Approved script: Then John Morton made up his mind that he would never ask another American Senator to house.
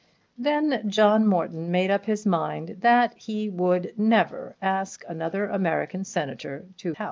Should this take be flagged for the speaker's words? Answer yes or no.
no